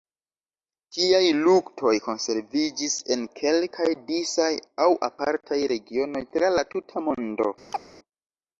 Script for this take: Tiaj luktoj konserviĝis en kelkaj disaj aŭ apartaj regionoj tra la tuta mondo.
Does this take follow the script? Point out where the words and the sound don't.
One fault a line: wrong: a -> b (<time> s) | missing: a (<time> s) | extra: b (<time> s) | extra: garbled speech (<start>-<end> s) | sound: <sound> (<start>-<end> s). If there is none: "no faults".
sound: chirp (7.7-7.8 s)